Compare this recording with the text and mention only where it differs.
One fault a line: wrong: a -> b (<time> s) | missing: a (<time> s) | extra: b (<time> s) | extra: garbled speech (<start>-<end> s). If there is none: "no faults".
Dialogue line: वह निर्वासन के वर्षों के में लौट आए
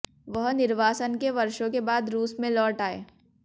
extra: बाद रूस (1.8 s)